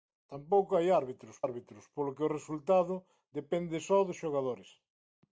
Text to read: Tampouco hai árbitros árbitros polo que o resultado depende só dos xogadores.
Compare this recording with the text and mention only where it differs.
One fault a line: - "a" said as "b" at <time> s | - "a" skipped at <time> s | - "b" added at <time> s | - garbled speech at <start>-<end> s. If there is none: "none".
none